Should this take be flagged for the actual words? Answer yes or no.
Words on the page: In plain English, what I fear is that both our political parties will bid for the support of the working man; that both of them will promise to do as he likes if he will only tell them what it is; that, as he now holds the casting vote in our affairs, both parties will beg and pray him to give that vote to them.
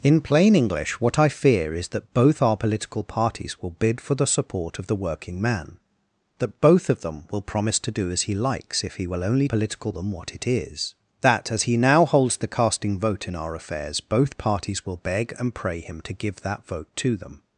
yes